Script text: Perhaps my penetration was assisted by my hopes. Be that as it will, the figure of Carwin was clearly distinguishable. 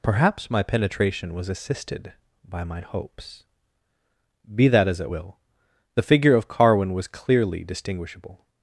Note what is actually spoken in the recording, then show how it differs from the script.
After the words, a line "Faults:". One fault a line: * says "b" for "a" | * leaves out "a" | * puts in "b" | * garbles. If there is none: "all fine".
Perhaps my penetration was assisted by my hopes. Be that as it will, the figure of Carwin was clearly distinguishable.
Faults:
all fine